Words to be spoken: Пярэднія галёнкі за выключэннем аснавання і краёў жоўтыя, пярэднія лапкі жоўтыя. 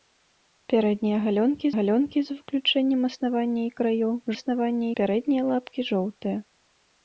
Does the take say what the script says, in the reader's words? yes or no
no